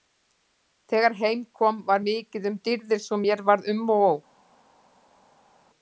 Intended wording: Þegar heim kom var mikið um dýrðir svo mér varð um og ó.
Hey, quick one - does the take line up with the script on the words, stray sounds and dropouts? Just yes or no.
yes